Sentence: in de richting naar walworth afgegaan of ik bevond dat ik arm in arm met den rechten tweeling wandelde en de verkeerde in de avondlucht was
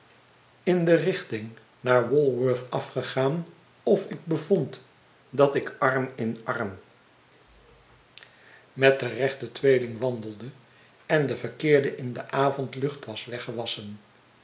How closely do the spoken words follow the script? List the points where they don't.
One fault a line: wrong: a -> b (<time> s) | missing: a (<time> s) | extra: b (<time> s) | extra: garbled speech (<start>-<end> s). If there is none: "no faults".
no faults